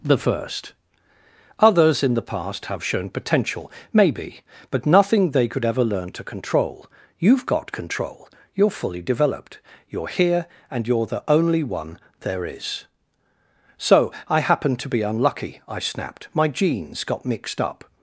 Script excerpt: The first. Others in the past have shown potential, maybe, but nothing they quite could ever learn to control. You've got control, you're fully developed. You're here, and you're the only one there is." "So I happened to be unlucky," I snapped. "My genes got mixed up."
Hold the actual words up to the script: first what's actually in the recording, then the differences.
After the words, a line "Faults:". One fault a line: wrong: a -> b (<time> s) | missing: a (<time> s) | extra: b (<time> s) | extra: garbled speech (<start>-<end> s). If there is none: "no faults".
The first. Others in the past have shown potential, maybe, but nothing they could ever learn to control. You've got control, you're fully developed. You're here, and you're the only one there is." "So I happened to be unlucky," I snapped. "My genes got mixed up."
Faults:
missing: quite (5.5 s)